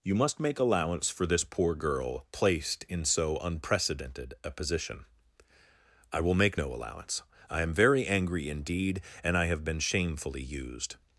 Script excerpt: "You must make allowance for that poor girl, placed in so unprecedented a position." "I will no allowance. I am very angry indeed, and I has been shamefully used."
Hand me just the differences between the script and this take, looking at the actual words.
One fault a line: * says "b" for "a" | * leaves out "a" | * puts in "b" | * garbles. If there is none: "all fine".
* says "this" for "that"
* puts in "make"
* says "have" for "has"